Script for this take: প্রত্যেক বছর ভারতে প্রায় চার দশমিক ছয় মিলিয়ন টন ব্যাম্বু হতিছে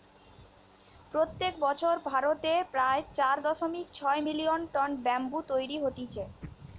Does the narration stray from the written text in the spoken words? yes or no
yes